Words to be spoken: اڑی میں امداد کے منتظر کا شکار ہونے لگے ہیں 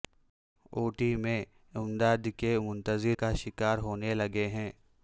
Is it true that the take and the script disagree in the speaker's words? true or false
false